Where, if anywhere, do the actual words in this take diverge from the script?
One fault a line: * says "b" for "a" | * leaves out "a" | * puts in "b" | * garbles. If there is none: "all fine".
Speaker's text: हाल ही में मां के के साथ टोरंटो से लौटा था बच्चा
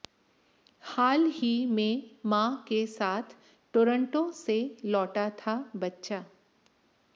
* leaves out "के"